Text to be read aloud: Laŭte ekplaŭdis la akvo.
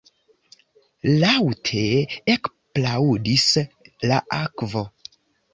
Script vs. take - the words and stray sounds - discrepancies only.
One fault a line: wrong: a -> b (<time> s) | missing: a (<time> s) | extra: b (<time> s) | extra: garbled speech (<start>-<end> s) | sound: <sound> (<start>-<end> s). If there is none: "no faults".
no faults